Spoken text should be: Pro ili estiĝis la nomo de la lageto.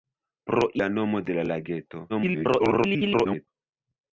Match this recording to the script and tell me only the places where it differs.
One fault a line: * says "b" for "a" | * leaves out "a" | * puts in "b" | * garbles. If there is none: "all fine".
* leaves out "ili estiĝis"
* garbles